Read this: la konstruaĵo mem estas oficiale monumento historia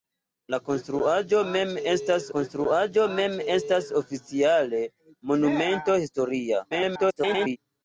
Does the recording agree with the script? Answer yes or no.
no